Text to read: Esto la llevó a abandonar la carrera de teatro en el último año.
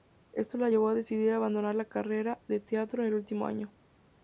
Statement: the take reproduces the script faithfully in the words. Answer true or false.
false